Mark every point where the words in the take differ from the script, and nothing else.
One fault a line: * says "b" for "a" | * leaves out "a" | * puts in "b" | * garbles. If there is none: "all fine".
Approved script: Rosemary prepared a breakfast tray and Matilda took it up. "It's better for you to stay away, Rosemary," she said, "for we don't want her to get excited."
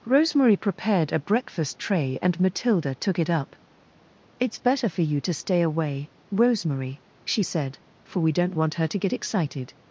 all fine